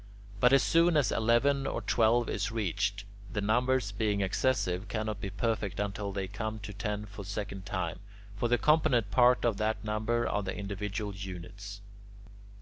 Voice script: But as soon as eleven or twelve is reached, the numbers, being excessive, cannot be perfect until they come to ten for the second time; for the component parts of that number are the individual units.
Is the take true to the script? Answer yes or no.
yes